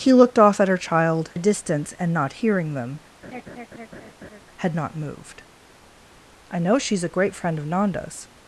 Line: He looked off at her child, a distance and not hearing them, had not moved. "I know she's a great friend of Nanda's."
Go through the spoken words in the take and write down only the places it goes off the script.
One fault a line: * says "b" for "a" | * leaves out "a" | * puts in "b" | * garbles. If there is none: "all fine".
all fine